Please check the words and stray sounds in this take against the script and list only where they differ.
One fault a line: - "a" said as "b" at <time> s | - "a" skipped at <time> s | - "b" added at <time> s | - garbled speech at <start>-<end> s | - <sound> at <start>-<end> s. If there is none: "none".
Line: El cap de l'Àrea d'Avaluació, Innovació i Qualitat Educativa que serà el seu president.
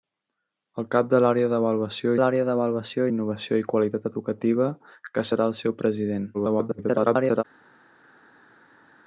- "l'Àrea d'Avaluació" added at 2.2 s
- garbled speech at 6.3-7.4 s